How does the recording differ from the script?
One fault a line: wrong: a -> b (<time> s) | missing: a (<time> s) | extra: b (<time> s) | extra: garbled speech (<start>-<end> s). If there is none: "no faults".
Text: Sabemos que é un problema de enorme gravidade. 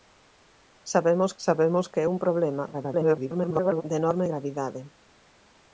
extra: sabemos (1.4 s)
extra: garbled speech (2.7-3.8 s)